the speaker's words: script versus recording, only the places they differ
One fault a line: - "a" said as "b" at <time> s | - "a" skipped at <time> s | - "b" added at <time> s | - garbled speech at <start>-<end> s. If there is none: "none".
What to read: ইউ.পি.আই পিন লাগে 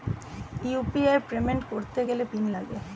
- "পেমেন্ট করতে গেলে" added at 1.3 s